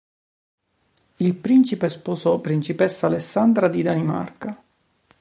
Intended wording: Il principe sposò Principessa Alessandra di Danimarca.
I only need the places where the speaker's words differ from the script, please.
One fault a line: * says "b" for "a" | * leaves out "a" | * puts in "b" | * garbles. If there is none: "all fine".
all fine